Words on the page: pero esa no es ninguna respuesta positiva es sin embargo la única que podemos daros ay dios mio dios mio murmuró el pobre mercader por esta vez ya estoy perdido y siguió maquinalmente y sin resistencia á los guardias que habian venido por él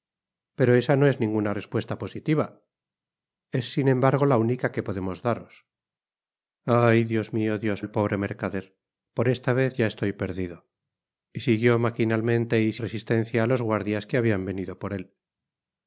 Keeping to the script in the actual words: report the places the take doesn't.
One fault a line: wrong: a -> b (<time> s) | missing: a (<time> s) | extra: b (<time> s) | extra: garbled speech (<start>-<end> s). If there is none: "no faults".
missing: mio murmuró (7.8 s)
missing: sin (12.7 s)